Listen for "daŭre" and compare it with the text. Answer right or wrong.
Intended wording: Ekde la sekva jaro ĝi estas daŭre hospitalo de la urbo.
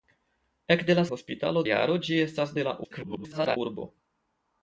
wrong